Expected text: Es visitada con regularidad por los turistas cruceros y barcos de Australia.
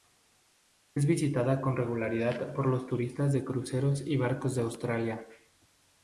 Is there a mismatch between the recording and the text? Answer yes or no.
yes